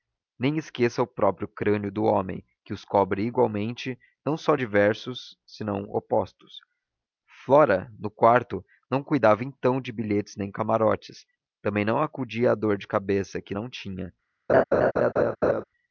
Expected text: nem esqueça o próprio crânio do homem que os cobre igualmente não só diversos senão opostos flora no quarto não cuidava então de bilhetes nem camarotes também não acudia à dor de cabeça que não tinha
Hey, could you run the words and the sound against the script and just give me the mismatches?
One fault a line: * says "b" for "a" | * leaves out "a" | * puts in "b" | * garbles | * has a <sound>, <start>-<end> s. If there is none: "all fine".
* has a laugh, 14.5-15.6 s